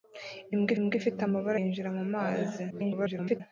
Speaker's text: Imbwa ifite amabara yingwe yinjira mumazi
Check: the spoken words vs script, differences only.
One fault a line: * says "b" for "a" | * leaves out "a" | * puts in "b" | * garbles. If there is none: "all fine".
* puts in "imbwa"
* leaves out "yingwe"
* garbles